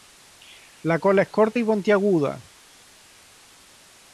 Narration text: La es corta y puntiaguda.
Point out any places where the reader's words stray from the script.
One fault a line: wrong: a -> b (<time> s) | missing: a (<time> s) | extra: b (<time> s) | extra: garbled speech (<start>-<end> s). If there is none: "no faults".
extra: cola (0.9 s)